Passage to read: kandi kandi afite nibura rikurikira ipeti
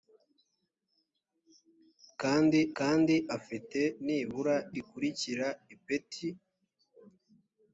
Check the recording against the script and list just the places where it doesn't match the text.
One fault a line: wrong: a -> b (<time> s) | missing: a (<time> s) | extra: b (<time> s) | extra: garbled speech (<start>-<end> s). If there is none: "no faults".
no faults